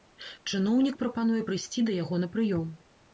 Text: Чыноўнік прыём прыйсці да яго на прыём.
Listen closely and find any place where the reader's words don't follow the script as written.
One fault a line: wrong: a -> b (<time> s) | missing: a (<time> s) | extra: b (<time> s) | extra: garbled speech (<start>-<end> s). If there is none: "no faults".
wrong: прыём -> прапануе (1.0 s)